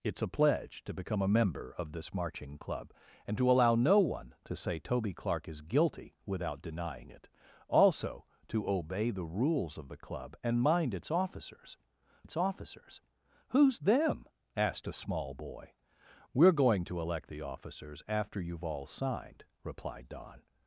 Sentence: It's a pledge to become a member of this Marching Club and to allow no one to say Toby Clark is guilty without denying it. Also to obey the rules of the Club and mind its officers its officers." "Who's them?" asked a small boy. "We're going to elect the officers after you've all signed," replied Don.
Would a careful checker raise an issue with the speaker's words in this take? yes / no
no